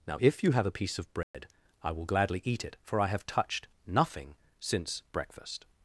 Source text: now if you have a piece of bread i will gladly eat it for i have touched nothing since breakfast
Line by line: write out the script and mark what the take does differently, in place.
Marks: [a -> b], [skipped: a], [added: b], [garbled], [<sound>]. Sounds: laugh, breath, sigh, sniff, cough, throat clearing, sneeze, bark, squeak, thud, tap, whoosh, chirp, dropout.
now if you have a piece of bread [dropout] i will gladly eat it for i have touched nothing since breakfast